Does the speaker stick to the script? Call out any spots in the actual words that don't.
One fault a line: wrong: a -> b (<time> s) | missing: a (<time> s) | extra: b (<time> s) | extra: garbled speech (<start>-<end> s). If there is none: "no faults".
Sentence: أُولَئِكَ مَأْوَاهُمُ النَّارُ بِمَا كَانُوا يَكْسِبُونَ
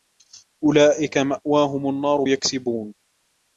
missing: بِمَا كَانُوا (2.2 s)